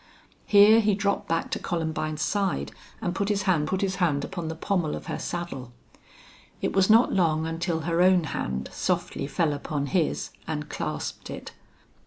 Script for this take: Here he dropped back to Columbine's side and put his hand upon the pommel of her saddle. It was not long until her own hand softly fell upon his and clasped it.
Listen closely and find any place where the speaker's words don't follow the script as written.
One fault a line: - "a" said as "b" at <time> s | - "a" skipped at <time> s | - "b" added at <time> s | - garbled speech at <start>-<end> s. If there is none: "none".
- "put his hand" added at 3.6 s